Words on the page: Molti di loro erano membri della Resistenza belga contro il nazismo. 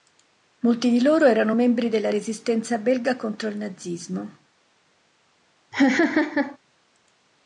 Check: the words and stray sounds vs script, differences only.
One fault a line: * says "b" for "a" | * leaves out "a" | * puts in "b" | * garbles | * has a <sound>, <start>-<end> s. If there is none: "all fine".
* has a laugh, 5.7-6.6 s